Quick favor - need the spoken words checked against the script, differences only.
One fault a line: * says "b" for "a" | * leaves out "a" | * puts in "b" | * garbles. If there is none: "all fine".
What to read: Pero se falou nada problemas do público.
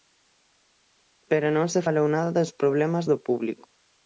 * puts in "non"
* puts in "dos"